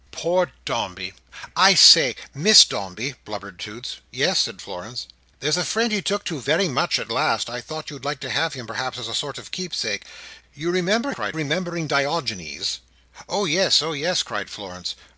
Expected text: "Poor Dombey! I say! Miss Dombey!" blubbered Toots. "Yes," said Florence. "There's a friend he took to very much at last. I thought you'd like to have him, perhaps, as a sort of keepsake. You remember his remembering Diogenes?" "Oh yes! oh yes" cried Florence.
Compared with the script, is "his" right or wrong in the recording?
wrong